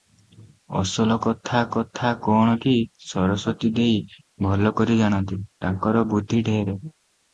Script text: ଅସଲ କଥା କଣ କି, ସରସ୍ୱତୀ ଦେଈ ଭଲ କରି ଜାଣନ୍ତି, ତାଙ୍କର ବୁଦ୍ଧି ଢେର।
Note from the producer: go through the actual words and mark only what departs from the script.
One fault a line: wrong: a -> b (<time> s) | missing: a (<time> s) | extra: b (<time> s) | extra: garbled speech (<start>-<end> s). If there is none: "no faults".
extra: କଥା (1.7 s)